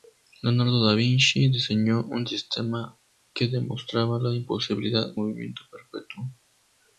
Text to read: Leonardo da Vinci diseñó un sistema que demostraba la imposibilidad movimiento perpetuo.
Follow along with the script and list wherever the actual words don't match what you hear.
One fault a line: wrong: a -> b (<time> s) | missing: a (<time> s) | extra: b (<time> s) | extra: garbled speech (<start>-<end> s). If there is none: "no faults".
no faults